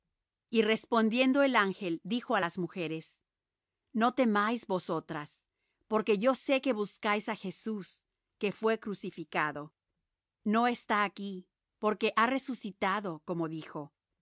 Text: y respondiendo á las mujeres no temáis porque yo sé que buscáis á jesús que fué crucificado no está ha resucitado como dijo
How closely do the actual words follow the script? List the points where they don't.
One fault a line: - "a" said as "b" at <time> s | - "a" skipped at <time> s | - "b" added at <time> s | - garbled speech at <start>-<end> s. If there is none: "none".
- "el ángel dijo" added at 1.4 s
- "vosotras" added at 4.7 s
- "aquí porque" added at 11.0 s